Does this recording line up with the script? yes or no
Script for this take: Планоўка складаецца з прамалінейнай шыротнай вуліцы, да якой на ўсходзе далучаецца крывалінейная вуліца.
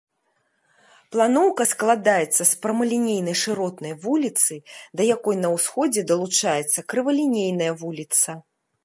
yes